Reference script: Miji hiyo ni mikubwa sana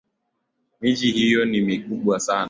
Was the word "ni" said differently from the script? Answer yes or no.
no